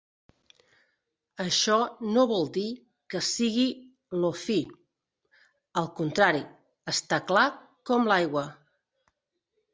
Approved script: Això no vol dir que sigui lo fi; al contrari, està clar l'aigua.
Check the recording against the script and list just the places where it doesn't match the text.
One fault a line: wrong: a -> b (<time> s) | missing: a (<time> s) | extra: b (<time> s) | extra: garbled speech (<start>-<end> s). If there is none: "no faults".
extra: com (7.9 s)